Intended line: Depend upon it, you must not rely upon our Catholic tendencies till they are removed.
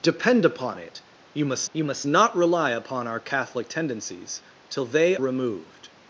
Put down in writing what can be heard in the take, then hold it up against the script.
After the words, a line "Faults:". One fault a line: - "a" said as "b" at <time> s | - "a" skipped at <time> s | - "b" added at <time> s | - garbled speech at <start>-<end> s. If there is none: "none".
Depend upon it, you must you must not rely upon our Catholic tendencies till they removed.
Faults:
- "you must" added at 1.7 s
- "are" skipped at 5.2 s